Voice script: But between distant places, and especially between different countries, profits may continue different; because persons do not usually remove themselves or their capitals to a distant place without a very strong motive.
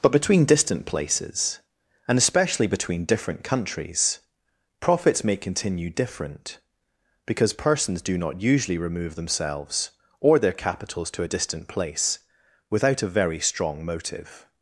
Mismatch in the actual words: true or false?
false